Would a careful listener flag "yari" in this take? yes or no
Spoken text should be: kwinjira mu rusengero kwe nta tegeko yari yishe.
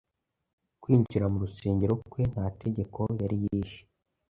no